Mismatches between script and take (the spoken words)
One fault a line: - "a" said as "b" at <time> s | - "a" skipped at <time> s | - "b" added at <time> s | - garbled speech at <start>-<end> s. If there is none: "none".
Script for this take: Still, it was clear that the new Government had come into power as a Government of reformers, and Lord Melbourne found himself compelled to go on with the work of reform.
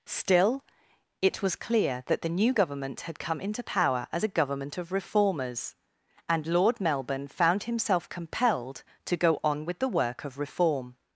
none